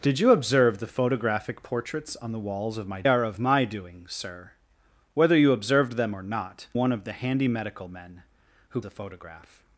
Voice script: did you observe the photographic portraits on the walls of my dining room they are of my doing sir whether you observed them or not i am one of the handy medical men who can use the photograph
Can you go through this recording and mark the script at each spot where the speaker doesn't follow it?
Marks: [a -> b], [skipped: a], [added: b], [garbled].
did you observe the photographic portraits on the walls of my [skipped: dining room they] are of my doing sir whether you observed them or not [skipped: i am] one of the handy medical men who [skipped: can use] the photograph